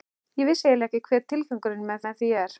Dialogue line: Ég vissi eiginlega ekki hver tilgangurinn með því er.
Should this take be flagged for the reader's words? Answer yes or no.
yes